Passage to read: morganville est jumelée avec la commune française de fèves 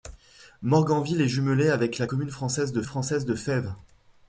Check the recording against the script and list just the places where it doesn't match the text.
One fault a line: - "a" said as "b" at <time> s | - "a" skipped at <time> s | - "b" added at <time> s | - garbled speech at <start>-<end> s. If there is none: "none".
- "française de" added at 2.8 s